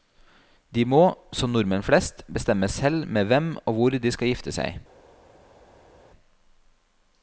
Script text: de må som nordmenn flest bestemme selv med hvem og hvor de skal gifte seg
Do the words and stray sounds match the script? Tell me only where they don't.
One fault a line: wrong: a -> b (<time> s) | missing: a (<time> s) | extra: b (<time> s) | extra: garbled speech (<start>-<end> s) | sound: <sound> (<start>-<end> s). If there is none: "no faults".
no faults